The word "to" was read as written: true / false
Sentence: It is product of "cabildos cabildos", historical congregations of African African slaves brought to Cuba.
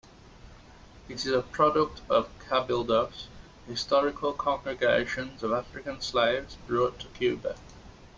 true